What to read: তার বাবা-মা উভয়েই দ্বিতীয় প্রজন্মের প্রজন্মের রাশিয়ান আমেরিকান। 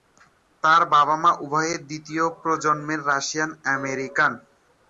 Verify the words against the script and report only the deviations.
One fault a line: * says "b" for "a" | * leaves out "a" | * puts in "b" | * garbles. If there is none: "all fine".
* leaves out "প্রজন্মের"